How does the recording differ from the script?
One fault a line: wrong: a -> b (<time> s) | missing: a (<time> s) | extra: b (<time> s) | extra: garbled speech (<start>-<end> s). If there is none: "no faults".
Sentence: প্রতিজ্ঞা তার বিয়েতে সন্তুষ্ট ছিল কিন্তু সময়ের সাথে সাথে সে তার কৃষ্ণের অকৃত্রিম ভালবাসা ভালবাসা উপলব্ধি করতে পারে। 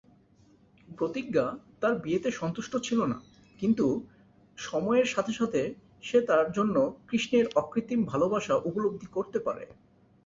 extra: না (3.0 s)
extra: জন্য (6.5 s)
missing: ভালবাসা (8.6 s)